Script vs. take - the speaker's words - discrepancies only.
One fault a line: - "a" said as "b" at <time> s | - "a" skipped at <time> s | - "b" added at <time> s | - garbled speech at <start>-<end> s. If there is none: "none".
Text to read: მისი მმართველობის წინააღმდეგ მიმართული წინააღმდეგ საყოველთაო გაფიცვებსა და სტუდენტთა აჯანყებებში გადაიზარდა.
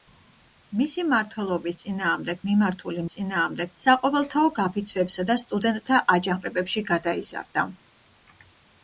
none